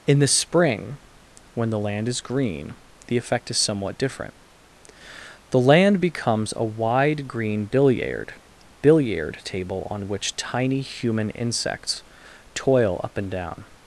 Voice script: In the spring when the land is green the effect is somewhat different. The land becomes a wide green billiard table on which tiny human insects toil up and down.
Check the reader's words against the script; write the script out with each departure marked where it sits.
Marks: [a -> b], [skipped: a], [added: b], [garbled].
In the spring when the land is green the effect is somewhat different. The land becomes a wide green billiard [added: billiard] table on which tiny human insects toil up and down.